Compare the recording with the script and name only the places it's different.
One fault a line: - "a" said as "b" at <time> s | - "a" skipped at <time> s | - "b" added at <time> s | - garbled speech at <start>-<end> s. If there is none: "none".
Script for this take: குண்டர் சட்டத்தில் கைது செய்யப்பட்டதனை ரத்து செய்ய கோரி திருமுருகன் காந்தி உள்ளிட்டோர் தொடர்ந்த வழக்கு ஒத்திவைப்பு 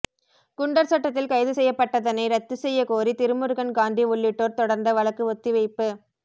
none